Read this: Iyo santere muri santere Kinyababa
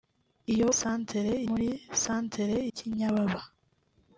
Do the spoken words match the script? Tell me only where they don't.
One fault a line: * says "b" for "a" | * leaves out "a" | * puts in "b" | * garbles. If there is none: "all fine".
all fine